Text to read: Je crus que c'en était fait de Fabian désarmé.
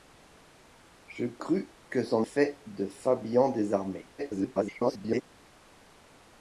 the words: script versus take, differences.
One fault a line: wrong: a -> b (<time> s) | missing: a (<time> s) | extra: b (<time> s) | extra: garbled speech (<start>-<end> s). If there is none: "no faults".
missing: était (2.2 s)
extra: garbled speech (4.2-5.2 s)